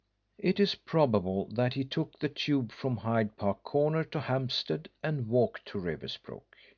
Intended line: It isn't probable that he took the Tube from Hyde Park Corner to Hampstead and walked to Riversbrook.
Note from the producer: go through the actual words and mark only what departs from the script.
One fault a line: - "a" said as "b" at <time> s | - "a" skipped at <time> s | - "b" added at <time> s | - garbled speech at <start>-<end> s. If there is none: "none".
- "isn't" said as "is" at 0.6 s